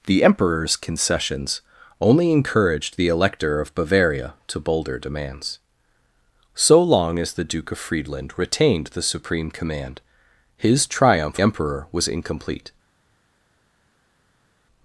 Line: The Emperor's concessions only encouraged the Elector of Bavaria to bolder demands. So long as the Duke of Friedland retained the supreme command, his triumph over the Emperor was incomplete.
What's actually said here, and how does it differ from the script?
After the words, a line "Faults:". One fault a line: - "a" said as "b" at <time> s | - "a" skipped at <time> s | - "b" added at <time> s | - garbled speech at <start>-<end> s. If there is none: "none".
The Emperor's concessions only encouraged the Elector of Bavaria to bolder demands. So long as the Duke of Friedland retained the supreme command, his triumph Emperor was incomplete.
Faults:
- "over the" skipped at 11.4 s